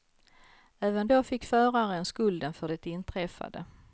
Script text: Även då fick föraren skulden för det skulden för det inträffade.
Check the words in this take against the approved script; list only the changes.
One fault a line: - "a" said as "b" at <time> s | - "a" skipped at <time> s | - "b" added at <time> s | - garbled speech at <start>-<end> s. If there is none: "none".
- "skulden för det" skipped at 2.9 s